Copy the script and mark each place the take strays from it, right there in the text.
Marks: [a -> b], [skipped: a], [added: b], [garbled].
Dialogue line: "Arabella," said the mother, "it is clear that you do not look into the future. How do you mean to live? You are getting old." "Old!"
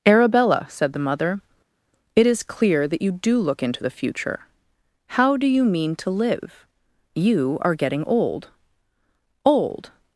"Arabella," said the mother, "it is clear that you do [skipped: not] look into the future. How do you mean to live? You are getting old." "Old!"